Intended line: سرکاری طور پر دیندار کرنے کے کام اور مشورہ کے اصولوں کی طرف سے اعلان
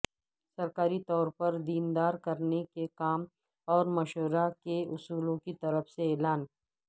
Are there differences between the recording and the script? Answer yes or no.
no